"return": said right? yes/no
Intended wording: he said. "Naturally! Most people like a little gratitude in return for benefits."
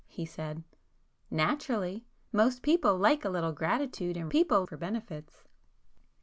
no